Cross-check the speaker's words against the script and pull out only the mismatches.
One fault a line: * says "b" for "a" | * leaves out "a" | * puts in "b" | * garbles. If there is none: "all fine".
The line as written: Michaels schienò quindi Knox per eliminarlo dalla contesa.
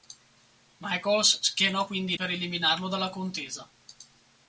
* leaves out "Knox"